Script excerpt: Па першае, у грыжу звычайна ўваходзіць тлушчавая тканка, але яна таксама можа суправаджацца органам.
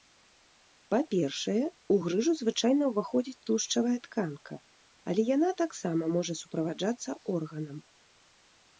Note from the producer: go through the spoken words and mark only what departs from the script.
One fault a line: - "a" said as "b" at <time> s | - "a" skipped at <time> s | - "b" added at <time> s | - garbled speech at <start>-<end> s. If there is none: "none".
none